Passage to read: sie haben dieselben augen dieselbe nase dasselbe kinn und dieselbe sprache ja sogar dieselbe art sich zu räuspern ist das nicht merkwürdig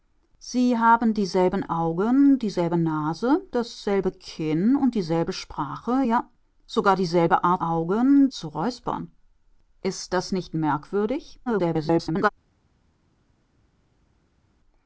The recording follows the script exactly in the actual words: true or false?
false